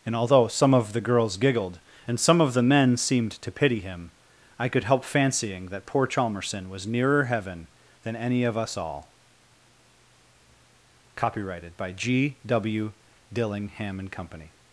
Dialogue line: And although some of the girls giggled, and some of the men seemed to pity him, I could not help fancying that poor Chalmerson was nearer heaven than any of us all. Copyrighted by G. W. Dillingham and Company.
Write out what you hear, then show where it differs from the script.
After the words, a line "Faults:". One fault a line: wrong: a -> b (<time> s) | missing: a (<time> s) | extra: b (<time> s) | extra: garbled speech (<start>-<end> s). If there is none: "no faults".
And although some of the girls giggled, and some of the men seemed to pity him, I could help fancying that poor Chalmerson was nearer heaven than any of us all. Copyrighted by G. W. Dillingham and Company.
Faults:
missing: not (4.8 s)